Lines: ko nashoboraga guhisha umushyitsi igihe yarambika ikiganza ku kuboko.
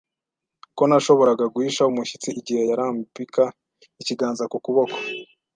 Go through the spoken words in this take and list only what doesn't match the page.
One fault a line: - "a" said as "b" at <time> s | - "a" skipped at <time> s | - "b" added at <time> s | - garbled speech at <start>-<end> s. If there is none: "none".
none